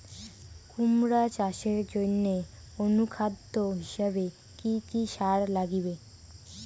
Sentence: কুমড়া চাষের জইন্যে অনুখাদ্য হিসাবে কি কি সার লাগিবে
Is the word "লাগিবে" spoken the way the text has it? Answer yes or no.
yes